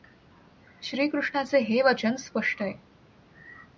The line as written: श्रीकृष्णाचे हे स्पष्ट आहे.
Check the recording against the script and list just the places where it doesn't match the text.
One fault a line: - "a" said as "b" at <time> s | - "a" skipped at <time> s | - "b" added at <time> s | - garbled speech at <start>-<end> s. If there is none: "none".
- "वचन" added at 1.8 s